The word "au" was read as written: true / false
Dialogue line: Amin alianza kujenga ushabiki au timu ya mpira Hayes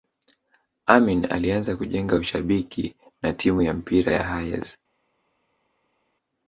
false